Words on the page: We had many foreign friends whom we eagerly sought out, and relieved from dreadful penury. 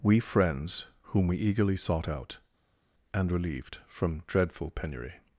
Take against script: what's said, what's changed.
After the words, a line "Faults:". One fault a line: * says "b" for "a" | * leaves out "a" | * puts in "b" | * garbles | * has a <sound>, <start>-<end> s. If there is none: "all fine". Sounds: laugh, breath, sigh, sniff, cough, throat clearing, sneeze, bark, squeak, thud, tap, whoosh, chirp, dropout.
We friends whom we eagerly sought out, and relieved from dreadful penury.
Faults:
* leaves out "had many foreign"